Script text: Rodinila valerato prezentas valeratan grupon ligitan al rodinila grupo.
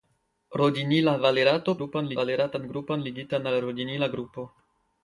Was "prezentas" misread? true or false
true